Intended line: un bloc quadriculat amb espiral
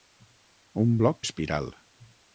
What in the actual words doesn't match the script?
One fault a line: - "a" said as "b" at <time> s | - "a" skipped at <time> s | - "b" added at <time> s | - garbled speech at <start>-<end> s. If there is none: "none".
- "quadriculat amb" skipped at 1.2 s